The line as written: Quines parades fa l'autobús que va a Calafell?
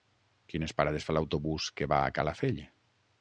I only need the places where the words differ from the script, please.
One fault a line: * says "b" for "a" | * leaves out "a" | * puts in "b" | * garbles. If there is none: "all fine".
all fine